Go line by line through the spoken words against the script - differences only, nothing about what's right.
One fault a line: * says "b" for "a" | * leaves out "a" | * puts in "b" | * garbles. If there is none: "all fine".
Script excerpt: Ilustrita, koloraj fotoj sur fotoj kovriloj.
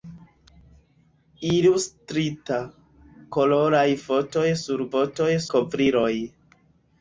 all fine